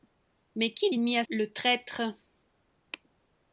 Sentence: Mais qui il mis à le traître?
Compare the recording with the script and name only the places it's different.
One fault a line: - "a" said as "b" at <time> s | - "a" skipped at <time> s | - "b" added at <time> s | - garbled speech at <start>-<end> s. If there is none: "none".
none